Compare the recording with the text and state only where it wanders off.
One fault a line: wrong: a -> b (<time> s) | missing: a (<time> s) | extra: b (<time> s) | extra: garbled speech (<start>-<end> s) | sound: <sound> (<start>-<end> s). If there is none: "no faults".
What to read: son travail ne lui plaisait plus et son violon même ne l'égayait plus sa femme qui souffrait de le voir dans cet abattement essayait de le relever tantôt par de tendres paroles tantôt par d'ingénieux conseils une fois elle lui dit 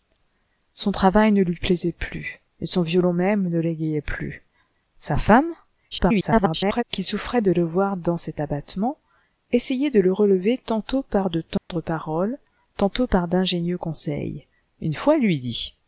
extra: garbled speech (5.9-6.8 s)
sound: dropout (11.6-11.7 s)